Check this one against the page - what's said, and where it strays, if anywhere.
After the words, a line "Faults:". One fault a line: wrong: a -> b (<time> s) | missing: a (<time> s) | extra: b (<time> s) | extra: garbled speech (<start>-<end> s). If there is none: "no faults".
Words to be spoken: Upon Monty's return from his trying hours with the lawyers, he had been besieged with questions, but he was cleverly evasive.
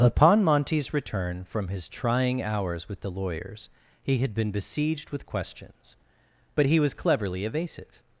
Upon Monty's return from his trying hours with the lawyers, he had been besieged with questions, but he was cleverly evasive.
Faults:
no faults